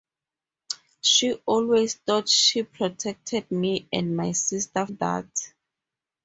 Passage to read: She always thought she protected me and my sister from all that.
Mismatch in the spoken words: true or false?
true